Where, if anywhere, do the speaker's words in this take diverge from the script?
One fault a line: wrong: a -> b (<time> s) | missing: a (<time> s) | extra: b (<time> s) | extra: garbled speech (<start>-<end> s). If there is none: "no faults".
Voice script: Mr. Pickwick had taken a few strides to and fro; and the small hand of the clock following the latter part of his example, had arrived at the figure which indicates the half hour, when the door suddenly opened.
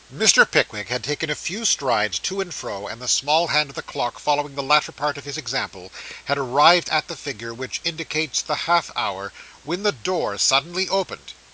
no faults